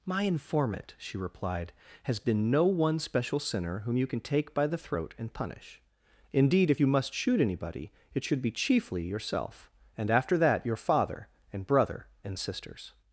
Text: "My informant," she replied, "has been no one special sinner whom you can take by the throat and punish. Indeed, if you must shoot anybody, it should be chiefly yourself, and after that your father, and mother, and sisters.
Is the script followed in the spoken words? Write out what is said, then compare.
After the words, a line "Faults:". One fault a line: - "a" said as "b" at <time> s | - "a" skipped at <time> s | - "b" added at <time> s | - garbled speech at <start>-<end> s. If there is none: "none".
"My informant," she replied, "has been no one special sinner whom you can take by the throat and punish. Indeed, if you must shoot anybody, it should be chiefly yourself, and after that your father, and brother, and sisters.
Faults:
- "mother" said as "brother" at 11.7 s